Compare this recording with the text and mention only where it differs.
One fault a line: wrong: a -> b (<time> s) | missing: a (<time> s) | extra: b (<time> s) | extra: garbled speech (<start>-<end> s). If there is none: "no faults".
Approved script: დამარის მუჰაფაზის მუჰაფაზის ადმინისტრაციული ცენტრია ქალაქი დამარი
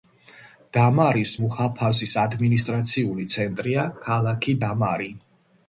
missing: მუჰაფაზის (2.1 s)